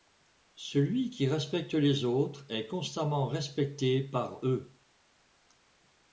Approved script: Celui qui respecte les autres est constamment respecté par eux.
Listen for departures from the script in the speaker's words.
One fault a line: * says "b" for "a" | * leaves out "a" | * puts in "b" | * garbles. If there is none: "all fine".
all fine